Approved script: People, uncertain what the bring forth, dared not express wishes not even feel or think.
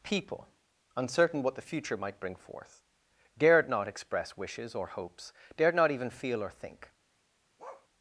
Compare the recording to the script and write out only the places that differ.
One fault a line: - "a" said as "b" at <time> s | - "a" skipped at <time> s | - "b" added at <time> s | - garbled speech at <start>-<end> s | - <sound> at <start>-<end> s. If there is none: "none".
- "future might" added at 1.6 s
- "or hopes dared" added at 4.8 s
- bark at 7.6-7.9 s